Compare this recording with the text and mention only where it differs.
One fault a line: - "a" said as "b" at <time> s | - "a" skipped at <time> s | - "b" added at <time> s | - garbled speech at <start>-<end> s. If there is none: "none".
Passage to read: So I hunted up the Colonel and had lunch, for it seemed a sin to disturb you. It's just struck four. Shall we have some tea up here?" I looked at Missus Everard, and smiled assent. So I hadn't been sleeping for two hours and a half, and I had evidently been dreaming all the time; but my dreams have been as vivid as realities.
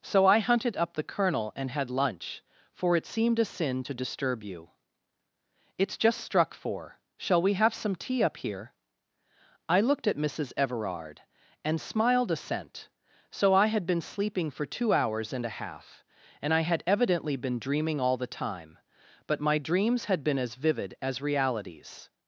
- "hadn't" said as "had" at 13.7 s
- "have" said as "had" at 20.0 s